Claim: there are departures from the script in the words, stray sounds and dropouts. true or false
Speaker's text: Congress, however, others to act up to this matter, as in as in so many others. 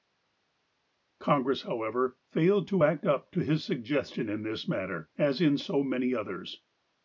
true